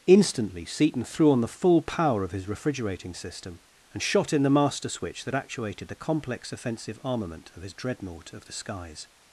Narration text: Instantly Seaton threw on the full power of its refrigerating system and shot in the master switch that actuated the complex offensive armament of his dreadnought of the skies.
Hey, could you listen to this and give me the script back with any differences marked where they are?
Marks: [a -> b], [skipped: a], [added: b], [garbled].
Instantly Seaton threw on the full power of [its -> his] refrigerating system and shot in the master switch that actuated the complex offensive armament of his dreadnought of the skies.